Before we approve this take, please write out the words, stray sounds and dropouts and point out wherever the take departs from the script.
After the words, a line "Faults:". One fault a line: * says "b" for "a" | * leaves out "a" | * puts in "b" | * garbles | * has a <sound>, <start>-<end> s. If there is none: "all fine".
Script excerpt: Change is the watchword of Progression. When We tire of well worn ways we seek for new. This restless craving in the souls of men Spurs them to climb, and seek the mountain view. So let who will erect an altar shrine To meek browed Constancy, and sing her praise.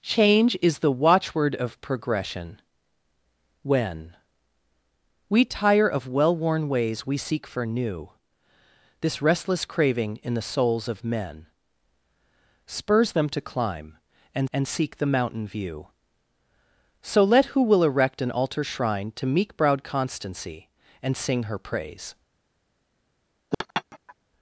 Change is the watchword of Progression. When We tire of well worn ways we seek for new. This restless craving in the souls of men Spurs them to climb, and and seek the mountain view. So let who will erect an altar shrine To meek browed Constancy, and sing her praise.
Faults:
* puts in "and"
* has a laugh, 23.5-24.1 s